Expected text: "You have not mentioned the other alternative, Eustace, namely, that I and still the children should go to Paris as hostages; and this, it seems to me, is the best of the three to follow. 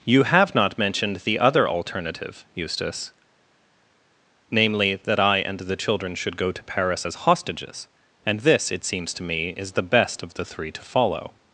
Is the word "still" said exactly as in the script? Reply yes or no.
no